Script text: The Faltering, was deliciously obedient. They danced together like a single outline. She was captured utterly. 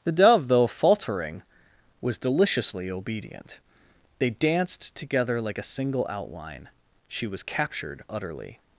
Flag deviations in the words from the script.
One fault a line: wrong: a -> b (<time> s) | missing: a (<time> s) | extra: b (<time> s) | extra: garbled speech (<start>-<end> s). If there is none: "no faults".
extra: Dove though (0.1 s)